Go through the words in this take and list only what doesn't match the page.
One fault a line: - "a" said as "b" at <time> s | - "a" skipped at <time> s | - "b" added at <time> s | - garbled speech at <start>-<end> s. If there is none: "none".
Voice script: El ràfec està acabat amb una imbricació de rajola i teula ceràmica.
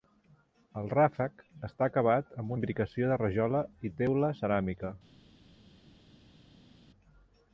- "una" skipped at 2.6 s